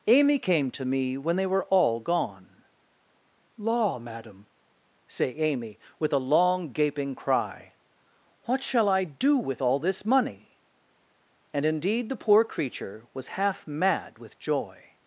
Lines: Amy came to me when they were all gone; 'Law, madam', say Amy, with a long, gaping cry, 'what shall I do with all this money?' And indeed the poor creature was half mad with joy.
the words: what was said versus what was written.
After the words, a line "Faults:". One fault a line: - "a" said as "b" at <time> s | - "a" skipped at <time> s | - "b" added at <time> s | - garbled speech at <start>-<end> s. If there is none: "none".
Amy came to me when they were all gone; 'Law, madam', say Amy, with a long, gaping cry, 'what shall I do with all this money?' And indeed the poor creature was half mad with joy.
Faults:
none